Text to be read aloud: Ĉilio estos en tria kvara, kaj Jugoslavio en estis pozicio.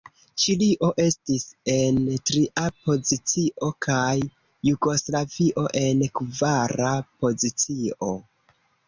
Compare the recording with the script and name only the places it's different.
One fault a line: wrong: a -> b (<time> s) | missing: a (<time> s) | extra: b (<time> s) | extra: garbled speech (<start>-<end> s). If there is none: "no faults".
wrong: estos -> estis (1.0 s)
wrong: kvara -> pozicio (2.9 s)
wrong: estis -> kvara (6.2 s)